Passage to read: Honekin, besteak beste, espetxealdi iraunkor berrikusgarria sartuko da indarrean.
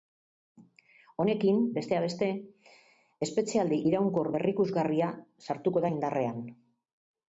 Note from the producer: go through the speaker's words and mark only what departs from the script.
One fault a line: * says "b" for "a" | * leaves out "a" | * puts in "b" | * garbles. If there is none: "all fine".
all fine